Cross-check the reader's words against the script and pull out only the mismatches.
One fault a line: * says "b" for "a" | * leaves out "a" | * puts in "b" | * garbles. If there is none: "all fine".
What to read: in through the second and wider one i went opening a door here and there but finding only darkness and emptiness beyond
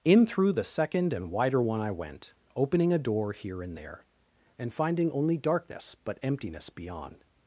* says "and" for "but"
* says "but" for "and"